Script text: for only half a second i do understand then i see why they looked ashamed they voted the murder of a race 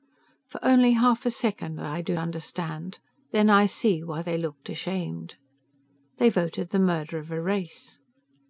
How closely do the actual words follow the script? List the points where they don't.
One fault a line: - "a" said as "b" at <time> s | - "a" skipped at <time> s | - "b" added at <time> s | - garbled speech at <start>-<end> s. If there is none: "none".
none